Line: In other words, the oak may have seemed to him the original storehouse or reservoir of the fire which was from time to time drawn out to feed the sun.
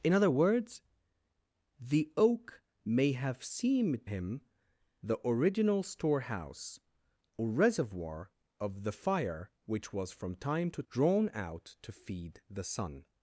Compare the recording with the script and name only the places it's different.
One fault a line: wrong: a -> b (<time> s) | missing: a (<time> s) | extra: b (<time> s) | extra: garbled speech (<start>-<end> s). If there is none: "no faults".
missing: to (4.1 s)
missing: time (10.8 s)